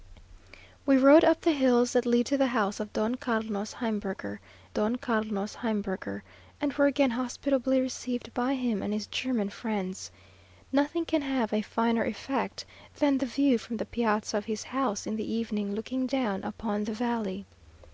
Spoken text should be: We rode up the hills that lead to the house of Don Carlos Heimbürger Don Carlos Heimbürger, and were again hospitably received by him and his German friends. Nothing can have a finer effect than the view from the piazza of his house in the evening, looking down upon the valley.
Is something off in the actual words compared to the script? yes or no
no